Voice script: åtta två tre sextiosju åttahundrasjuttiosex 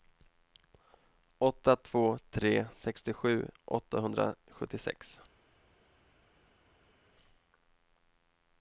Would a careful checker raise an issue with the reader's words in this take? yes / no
no